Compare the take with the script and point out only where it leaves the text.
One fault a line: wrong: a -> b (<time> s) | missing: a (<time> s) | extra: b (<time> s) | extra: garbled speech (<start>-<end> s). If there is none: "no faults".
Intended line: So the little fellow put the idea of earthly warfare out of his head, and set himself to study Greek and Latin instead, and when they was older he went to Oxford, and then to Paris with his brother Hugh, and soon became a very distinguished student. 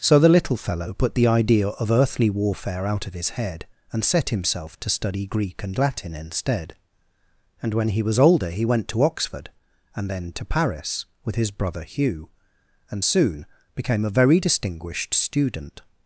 wrong: they -> he (7.9 s)